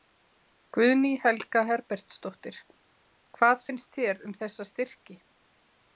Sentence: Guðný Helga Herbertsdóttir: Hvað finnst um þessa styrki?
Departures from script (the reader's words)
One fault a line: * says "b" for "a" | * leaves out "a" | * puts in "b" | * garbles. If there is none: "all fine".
* puts in "þér"